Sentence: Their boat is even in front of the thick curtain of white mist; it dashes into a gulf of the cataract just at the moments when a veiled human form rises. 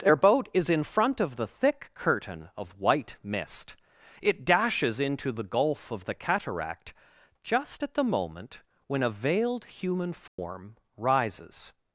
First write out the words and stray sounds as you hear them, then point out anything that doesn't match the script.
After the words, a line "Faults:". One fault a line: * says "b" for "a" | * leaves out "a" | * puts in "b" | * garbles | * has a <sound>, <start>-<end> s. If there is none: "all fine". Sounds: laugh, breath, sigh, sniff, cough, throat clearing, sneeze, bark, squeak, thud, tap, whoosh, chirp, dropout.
Their boat is in front of the thick curtain of white mist; it dashes into the gulf of the cataract just at the moment when a veiled human form rises.
Faults:
* leaves out "even"
* says "the" for "a"
* says "moment" for "moments"
* has a dropout, 10.3-10.4 s